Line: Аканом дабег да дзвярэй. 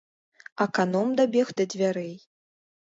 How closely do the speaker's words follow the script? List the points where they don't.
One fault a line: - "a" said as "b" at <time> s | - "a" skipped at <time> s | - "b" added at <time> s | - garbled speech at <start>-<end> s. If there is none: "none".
none